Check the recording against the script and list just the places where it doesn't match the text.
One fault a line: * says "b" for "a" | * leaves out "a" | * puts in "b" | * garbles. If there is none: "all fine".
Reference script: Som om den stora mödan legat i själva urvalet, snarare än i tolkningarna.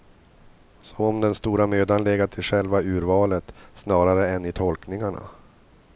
all fine